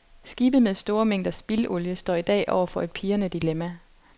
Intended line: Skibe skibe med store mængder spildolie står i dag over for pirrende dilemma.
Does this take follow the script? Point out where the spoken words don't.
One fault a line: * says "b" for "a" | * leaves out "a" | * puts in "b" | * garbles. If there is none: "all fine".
* leaves out "skibe"
* puts in "et"